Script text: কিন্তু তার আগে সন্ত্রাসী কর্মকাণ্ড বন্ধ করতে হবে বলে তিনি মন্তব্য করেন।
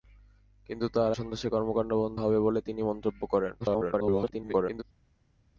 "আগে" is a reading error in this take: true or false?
true